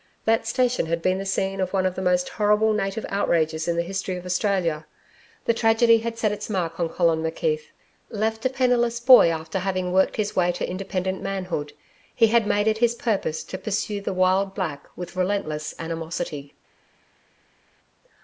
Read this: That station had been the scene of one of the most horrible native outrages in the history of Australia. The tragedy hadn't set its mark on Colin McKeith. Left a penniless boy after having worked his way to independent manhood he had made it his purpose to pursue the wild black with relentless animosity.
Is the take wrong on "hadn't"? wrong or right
wrong